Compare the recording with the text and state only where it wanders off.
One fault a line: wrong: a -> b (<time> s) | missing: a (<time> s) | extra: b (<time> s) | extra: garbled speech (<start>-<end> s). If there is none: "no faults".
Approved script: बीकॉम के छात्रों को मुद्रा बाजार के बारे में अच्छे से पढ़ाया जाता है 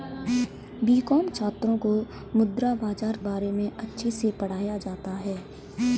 missing: के (1.3 s)
missing: के (3.2 s)